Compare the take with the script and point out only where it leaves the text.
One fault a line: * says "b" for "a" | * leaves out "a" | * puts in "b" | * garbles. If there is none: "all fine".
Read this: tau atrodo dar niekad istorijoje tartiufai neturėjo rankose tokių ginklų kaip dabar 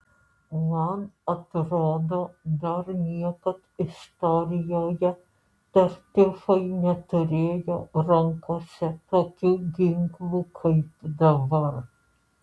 * says "man" for "tau"